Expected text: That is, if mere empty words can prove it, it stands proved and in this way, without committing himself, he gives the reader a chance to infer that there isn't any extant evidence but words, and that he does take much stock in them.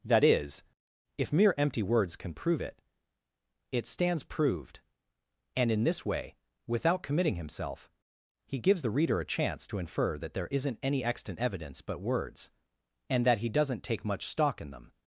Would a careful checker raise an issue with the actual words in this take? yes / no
yes